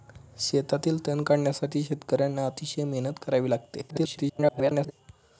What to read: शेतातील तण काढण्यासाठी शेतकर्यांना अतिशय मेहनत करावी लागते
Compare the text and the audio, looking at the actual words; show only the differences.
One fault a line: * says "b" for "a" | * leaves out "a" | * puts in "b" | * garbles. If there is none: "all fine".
* garbles